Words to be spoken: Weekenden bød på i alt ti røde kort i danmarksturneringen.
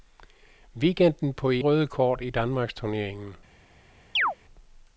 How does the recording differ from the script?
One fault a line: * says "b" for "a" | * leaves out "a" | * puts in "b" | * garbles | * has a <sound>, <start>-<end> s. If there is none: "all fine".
* leaves out "bød"
* leaves out "alt ti"
* has a chirp, 4.2-4.4 s